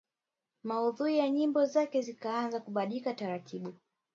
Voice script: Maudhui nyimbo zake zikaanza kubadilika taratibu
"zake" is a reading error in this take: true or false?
false